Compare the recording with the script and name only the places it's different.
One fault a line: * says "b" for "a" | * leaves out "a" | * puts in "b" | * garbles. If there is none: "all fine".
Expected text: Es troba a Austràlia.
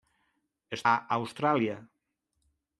* leaves out "troba"